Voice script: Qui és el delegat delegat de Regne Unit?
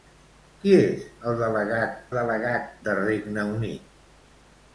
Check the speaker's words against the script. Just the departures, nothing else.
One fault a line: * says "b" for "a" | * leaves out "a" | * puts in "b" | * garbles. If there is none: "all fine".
all fine